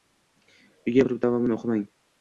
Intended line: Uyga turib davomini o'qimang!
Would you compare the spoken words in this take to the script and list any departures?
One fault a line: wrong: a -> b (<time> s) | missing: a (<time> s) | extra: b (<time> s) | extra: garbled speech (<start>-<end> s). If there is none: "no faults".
no faults